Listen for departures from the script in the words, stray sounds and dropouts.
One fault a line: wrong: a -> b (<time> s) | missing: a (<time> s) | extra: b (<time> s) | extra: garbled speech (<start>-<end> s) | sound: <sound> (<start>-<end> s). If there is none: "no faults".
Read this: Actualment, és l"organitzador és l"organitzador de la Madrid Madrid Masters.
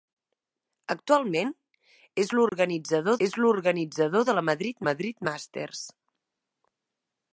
sound: dropout (2.5-2.5 s)